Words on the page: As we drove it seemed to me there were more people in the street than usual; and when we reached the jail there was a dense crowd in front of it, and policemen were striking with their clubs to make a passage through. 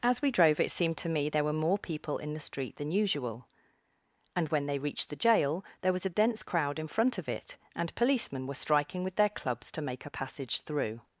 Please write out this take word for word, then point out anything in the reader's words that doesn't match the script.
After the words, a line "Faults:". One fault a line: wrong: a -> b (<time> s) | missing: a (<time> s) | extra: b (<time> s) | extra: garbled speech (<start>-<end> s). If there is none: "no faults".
As we drove it seemed to me there were more people in the street than usual; and when they reached the jail there was a dense crowd in front of it, and policemen were striking with their clubs to make a passage through.
Faults:
wrong: we -> they (4.7 s)